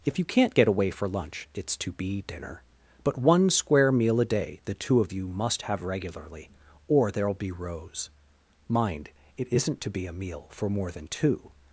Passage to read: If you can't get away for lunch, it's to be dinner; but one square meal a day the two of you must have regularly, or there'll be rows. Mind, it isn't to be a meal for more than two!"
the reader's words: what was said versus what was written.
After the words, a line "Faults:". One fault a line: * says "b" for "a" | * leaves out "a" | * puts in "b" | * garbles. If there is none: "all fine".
If you can't get away for lunch, it's to be dinner; but one square meal a day the two of you must have regularly, or there'll be rows. Mind, it isn't to be a meal for more than two!"
Faults:
all fine